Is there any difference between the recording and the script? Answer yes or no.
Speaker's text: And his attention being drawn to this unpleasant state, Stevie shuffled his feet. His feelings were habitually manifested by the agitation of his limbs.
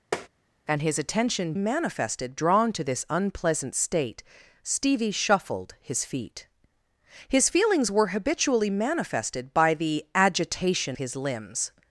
yes